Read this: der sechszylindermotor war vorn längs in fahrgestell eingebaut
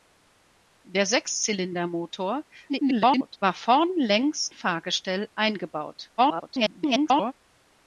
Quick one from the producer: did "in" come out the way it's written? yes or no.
no